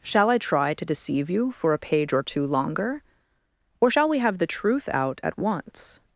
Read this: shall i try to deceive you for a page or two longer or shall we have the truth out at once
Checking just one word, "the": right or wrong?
right